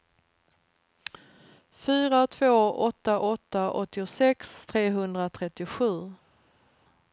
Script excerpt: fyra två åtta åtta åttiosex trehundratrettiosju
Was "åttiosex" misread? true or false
false